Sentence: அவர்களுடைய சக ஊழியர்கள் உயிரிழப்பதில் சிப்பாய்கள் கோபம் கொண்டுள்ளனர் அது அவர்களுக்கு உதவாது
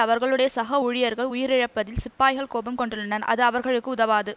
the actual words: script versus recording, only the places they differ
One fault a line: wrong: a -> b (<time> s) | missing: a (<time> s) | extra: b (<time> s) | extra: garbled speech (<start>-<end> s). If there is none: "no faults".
no faults